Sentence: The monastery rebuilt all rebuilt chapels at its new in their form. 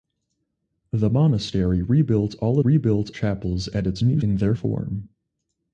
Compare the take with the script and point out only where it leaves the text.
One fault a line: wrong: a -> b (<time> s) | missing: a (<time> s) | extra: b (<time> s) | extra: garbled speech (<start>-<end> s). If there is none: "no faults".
no faults